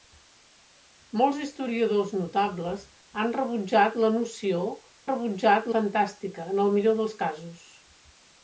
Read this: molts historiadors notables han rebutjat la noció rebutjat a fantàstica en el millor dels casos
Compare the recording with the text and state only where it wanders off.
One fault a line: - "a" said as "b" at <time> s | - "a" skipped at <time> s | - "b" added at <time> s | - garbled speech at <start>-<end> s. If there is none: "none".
none